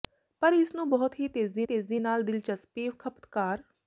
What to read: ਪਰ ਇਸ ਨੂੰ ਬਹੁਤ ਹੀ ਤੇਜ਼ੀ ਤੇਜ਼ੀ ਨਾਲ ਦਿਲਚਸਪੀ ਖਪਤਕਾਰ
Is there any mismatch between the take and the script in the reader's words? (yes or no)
no